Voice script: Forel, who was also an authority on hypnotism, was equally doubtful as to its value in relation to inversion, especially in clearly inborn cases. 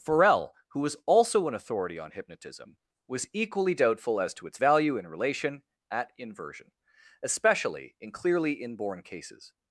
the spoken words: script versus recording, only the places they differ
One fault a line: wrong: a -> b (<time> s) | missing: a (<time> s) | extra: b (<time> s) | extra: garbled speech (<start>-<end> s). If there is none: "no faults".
wrong: to -> at (5.9 s)